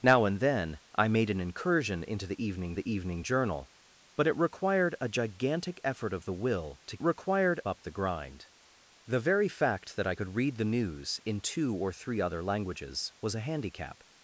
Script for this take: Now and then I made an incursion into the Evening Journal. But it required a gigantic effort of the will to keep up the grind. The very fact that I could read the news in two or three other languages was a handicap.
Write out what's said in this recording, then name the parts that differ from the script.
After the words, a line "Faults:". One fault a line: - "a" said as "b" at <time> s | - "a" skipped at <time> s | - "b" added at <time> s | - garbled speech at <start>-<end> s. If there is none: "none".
Now and then I made an incursion into the Evening the Evening Journal. But it required a gigantic effort of the will to required up the grind. The very fact that I could read the news in two or three other languages was a handicap.
Faults:
- "the Evening" added at 2.7 s
- "keep" said as "required" at 7.0 s